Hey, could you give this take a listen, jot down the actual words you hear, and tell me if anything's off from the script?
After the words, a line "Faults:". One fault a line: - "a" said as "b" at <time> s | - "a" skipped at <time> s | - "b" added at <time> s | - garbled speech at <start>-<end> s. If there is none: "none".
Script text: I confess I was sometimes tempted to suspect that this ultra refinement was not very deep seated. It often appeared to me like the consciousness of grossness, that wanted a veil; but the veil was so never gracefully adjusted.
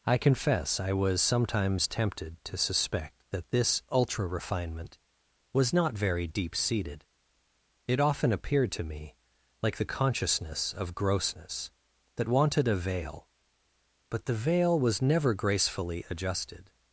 I confess I was sometimes tempted to suspect that this ultra refinement was not very deep seated. It often appeared to me like the consciousness of grossness, that wanted a veil; but the veil was never gracefully adjusted.
Faults:
- "so" skipped at 15.0 s